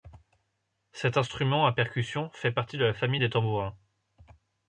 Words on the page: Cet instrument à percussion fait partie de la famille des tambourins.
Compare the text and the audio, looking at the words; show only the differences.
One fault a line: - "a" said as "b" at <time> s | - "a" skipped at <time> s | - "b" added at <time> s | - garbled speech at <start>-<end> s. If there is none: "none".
none